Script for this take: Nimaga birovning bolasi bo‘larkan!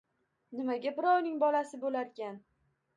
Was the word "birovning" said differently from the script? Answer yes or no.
no